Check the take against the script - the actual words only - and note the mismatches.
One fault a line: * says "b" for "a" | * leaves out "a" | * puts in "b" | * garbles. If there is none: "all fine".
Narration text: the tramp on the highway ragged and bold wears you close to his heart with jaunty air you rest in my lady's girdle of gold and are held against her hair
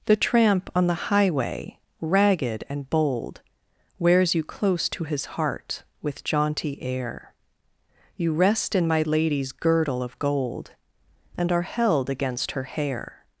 all fine